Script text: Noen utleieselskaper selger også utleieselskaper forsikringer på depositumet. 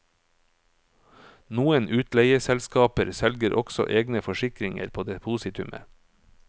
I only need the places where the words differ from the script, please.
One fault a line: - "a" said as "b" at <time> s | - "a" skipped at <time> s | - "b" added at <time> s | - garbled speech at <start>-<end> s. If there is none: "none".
- "utleieselskaper" said as "egne" at 3.9 s